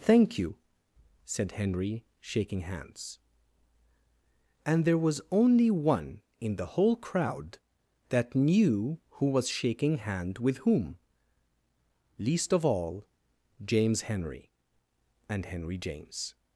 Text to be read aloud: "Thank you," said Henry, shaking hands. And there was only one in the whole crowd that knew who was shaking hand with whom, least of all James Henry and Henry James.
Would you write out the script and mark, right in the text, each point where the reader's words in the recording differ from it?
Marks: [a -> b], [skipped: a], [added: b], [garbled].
"Thank you," said Henry, shaking hands. And there was only one in the whole crowd that knew who was shaking hand with whom, least of all James Henry and Henry James.